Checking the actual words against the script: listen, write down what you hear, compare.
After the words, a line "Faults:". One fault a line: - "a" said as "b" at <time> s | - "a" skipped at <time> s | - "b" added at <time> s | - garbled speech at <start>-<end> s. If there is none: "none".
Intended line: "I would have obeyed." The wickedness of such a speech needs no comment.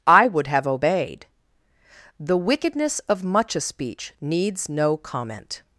"I would have obeyed." The wickedness of much a speech needs no comment.
Faults:
- "such" said as "much" at 3.2 s